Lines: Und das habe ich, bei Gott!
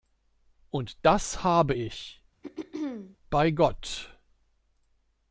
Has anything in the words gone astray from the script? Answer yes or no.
no